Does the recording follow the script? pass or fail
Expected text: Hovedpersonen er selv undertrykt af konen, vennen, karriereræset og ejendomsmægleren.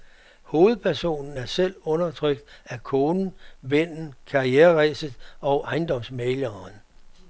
pass